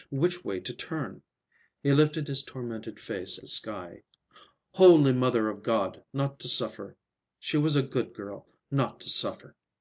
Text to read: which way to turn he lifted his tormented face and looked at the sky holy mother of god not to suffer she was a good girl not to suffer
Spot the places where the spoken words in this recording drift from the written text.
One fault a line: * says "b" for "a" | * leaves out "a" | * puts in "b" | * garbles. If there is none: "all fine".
* leaves out "and looked at"